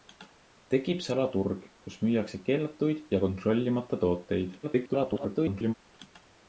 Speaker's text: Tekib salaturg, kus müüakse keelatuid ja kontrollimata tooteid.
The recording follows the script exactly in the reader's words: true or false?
false